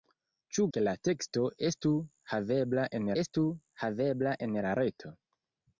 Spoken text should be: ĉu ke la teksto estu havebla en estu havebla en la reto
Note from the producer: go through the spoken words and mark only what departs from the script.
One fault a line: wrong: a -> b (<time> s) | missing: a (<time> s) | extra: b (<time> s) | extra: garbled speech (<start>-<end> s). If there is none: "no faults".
no faults